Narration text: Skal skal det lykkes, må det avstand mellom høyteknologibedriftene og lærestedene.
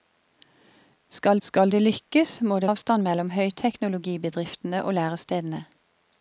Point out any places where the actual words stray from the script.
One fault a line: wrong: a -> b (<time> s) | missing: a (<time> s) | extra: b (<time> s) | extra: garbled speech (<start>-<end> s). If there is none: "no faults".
no faults